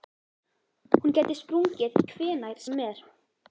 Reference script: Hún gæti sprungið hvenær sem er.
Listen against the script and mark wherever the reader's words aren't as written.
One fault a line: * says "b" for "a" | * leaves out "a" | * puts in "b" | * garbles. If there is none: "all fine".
all fine